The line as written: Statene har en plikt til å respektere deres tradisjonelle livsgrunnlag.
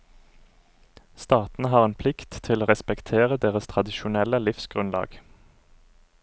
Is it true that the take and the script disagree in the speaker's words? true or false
false